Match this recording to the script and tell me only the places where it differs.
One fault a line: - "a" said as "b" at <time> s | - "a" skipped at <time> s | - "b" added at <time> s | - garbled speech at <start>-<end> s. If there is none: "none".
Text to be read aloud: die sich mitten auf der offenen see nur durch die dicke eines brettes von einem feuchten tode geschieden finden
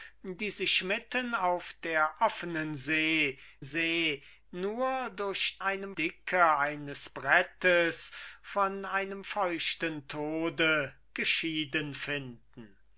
- "see" added at 3.6 s
- "die" said as "einem" at 5.6 s